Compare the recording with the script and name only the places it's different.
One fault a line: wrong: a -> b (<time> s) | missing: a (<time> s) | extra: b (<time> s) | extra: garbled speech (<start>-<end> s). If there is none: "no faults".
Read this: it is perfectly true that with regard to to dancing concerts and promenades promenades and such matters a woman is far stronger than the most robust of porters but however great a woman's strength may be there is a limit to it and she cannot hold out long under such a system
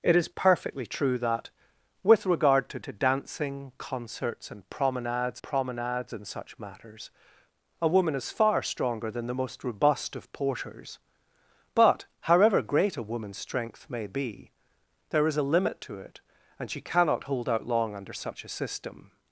no faults